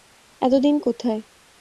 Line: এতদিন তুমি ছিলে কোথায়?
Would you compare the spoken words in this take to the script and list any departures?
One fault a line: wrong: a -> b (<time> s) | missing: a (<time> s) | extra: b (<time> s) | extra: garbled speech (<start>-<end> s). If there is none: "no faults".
missing: তুমি ছিলে (0.8 s)